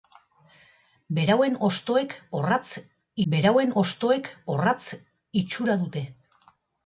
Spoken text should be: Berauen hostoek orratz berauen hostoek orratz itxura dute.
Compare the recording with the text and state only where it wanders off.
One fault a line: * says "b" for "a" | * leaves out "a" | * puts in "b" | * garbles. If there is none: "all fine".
all fine